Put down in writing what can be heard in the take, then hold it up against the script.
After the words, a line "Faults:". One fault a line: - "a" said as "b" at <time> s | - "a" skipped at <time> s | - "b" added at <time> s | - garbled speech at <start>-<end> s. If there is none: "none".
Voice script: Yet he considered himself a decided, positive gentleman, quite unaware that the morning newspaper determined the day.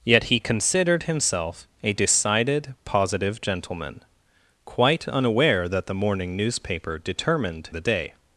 Yet he considered himself a decided, positive gentleman, quite unaware that the morning newspaper determined the day.
Faults:
none